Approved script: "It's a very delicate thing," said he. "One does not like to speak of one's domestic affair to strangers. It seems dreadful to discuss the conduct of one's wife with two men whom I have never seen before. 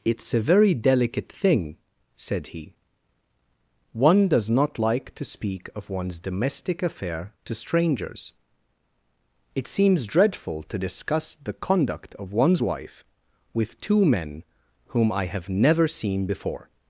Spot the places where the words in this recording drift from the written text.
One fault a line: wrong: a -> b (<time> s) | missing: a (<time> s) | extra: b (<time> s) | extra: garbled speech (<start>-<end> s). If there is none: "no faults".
no faults